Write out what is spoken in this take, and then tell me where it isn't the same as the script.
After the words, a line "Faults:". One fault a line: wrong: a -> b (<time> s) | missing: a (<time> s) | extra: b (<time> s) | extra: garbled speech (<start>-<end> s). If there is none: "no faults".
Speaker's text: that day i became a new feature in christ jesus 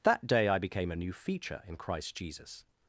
that day i became a new feature in christ jesus
Faults:
no faults